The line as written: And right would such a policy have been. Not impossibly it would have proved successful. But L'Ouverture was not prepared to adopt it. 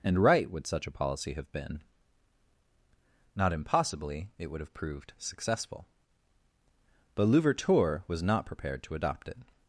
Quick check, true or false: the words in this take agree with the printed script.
true